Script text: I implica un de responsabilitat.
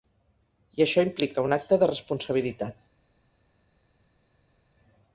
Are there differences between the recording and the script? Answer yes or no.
yes